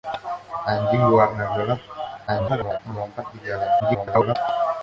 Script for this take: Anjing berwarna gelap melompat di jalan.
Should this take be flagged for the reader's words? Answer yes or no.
yes